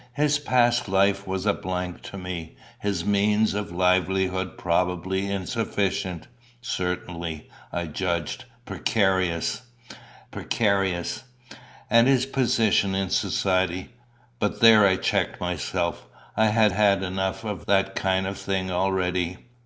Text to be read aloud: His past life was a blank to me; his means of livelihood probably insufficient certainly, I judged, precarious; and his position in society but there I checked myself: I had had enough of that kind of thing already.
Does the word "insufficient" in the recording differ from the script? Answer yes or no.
no